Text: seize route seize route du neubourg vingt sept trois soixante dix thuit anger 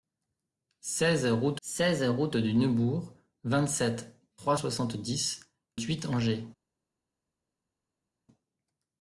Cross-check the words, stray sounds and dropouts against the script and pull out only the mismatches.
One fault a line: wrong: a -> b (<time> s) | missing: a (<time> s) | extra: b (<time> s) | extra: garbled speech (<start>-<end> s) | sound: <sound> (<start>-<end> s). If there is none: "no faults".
no faults